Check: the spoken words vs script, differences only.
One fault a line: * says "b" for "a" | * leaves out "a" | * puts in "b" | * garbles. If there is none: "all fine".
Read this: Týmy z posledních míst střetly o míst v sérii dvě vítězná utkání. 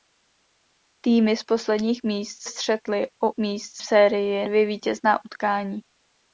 all fine